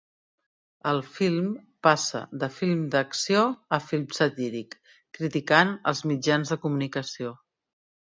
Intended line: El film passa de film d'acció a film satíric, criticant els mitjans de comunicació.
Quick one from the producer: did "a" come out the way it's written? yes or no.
yes